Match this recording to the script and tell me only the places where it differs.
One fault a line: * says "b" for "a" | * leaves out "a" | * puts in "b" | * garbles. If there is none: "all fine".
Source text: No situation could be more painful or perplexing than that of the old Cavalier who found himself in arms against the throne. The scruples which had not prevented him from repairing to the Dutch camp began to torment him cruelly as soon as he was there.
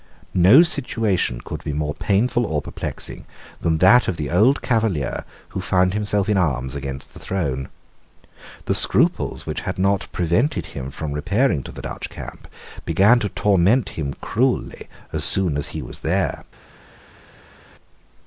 all fine